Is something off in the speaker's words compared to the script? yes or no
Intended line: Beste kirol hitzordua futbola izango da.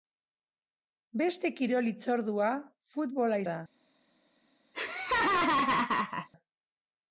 yes